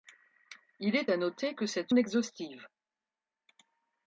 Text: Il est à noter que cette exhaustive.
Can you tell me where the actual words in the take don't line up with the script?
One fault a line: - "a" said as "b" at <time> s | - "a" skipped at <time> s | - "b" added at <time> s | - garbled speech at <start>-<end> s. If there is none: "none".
none